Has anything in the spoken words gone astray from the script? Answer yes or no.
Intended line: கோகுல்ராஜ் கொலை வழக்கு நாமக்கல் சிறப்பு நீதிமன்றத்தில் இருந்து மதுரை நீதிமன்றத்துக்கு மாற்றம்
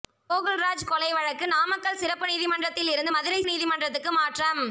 no